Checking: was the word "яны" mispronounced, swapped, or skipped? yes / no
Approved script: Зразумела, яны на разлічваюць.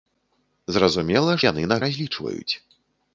no